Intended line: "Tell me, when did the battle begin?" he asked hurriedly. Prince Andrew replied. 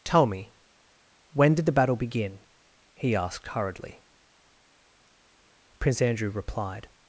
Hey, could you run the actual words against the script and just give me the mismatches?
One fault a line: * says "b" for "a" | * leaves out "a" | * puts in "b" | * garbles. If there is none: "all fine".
all fine